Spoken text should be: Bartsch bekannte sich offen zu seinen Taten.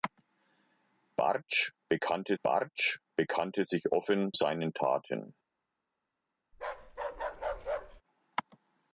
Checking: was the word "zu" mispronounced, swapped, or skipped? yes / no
yes